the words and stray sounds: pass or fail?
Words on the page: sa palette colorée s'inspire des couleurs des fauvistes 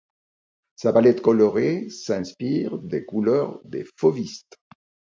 pass